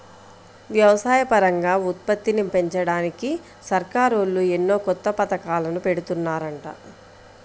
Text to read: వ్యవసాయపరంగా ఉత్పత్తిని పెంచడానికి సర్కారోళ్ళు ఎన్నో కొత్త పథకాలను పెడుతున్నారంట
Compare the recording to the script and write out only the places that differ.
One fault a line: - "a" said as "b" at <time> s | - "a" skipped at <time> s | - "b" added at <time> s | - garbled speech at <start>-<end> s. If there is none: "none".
none